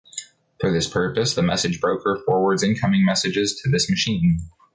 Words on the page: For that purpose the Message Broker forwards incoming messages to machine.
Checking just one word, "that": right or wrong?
wrong